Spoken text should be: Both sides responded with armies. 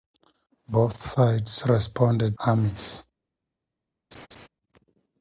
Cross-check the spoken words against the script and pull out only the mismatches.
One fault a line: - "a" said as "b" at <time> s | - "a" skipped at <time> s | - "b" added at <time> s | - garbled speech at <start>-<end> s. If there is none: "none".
- "with" skipped at 2.4 s